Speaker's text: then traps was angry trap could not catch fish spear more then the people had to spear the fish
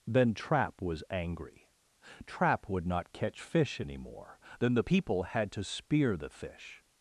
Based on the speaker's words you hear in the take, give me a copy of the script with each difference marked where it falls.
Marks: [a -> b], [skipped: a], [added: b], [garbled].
then [traps -> trap] was angry trap [could -> would] not catch fish [spear -> any] more then the people had to spear the fish